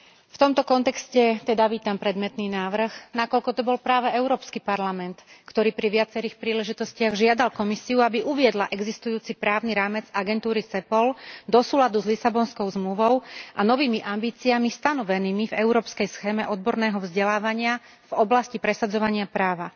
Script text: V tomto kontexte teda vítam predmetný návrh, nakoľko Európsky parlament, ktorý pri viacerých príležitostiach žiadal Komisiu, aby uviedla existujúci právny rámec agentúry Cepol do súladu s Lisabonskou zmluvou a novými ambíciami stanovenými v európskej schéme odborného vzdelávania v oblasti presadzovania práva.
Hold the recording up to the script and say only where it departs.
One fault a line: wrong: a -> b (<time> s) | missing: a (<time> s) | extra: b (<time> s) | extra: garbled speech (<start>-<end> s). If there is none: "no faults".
extra: to bol práve (3.5 s)